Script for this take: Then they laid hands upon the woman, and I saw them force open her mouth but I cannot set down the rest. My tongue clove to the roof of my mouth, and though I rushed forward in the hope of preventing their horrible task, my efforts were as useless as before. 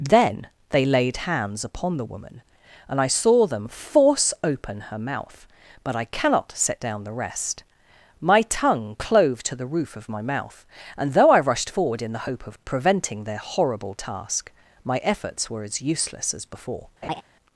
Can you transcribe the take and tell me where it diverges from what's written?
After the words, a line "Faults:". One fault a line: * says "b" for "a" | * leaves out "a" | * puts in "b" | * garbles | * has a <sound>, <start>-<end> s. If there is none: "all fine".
Then they laid hands upon the woman, and I saw them force open her mouth but I cannot set down the rest. My tongue clove to the roof of my mouth, and though I rushed forward in the hope of preventing their horrible task, my efforts were as useless as before.
Faults:
* has a laugh, 17.0-17.2 s